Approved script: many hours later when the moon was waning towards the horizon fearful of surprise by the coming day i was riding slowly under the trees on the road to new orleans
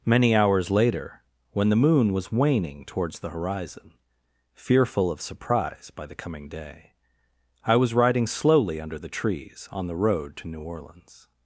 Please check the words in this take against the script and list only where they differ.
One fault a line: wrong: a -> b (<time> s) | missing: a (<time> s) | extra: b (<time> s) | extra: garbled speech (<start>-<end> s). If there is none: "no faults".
no faults